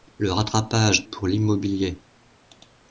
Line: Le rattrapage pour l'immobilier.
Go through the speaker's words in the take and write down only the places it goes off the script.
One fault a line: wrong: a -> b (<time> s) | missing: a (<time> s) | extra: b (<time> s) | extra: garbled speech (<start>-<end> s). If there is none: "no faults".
no faults